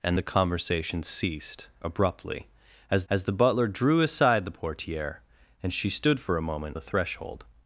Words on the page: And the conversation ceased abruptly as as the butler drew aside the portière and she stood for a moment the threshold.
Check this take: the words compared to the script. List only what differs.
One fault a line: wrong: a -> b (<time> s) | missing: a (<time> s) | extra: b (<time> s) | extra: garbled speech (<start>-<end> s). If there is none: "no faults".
no faults